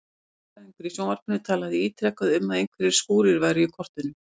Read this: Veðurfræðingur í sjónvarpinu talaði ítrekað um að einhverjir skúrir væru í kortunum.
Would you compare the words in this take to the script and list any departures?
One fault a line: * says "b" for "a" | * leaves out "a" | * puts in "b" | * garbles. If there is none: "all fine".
all fine